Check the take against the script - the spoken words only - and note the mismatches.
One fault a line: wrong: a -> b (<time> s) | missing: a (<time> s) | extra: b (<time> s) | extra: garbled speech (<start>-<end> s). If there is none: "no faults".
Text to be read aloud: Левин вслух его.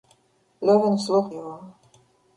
no faults